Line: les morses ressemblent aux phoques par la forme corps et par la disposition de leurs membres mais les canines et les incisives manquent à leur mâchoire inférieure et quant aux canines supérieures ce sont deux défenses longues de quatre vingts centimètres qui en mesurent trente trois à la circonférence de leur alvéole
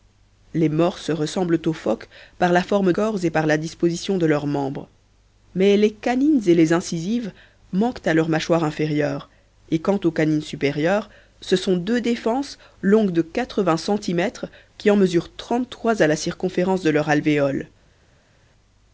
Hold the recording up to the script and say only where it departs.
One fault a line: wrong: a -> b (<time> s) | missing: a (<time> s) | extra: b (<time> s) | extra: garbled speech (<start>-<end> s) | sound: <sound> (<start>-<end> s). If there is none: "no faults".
no faults